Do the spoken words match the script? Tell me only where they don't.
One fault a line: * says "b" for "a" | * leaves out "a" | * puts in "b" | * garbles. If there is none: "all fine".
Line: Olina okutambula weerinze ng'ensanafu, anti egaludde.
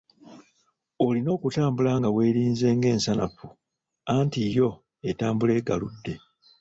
* puts in "nga"
* puts in "yo etambula"